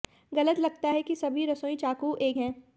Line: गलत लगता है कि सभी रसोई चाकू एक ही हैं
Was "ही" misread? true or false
true